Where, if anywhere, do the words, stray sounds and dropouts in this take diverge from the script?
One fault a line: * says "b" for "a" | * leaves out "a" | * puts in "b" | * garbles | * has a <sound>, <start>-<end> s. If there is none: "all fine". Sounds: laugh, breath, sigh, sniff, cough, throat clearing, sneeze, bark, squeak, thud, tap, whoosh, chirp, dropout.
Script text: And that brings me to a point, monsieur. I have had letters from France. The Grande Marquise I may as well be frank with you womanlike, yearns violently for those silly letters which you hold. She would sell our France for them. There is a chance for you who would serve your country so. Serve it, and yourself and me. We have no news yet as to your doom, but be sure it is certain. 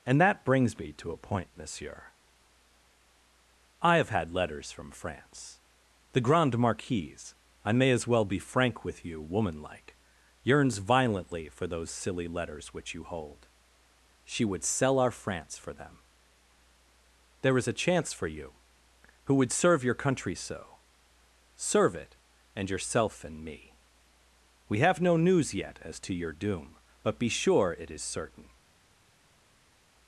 all fine